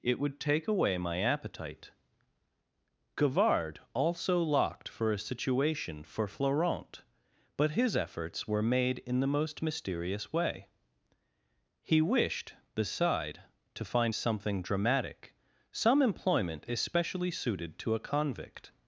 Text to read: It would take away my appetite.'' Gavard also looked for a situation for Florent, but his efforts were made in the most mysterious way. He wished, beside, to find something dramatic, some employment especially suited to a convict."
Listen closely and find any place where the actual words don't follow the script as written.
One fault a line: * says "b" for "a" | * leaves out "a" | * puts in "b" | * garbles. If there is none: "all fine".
* says "locked" for "looked"